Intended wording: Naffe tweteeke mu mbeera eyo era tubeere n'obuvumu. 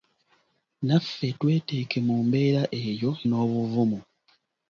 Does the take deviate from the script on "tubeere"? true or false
true